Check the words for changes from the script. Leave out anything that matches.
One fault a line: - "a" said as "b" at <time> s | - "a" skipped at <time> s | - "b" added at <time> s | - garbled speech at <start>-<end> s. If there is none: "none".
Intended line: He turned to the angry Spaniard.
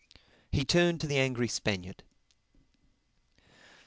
none